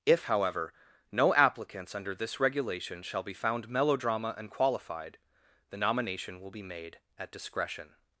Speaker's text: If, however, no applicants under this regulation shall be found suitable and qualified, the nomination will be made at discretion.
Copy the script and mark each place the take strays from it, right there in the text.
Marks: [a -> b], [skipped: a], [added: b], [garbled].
If, however, no applicants under this regulation shall be found [suitable -> melodrama] and qualified, the nomination will be made at discretion.